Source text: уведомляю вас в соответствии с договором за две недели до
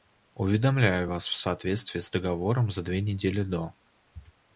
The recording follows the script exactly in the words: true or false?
true